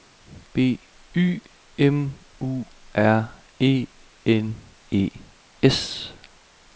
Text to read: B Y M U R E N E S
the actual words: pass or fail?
pass